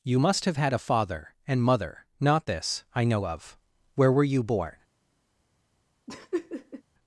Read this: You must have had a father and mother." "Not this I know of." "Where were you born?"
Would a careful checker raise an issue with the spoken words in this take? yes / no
no